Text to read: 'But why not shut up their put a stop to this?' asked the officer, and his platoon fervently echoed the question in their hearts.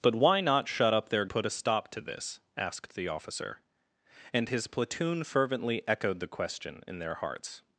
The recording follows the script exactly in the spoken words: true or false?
true